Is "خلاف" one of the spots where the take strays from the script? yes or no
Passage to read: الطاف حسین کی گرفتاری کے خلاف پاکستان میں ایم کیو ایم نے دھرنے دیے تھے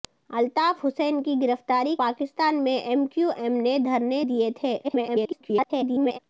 yes